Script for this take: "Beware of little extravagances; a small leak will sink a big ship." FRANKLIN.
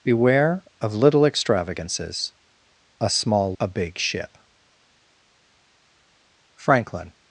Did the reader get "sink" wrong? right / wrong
wrong